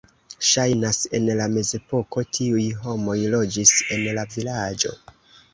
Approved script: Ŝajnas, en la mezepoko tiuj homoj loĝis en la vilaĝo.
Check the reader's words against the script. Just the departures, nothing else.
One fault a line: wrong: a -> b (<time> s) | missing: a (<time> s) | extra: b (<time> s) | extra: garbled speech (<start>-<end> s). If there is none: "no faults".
no faults